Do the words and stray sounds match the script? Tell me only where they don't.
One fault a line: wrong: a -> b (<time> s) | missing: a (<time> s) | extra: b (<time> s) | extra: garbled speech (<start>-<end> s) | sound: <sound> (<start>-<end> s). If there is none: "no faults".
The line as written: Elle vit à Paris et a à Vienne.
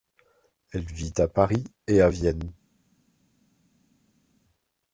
no faults